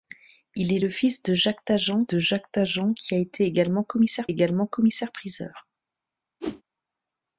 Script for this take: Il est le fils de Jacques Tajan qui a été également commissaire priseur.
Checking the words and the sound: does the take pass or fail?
fail